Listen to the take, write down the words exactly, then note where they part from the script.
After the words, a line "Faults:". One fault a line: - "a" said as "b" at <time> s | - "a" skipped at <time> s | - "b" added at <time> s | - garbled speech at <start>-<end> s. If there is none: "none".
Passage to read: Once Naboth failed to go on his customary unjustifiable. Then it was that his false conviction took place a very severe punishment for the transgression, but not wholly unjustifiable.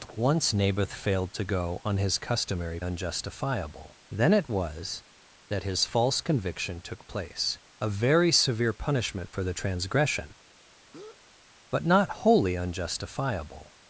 Once Naboth failed to go on his customary unjustifiable. Then it was that his false conviction took place a very severe punishment for the transgression, but not wholly unjustifiable.
Faults:
none